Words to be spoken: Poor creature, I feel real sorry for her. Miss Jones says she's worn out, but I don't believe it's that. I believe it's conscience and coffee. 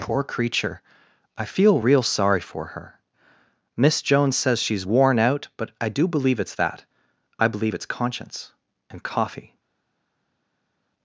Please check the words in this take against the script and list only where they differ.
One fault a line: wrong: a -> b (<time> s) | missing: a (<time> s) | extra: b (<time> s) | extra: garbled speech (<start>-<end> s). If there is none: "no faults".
wrong: don't -> do (5.9 s)